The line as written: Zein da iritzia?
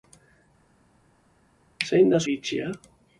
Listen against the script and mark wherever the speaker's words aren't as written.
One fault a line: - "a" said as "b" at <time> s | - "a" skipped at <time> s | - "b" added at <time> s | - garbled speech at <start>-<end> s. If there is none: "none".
none